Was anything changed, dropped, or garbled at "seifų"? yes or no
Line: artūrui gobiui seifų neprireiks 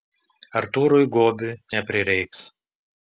yes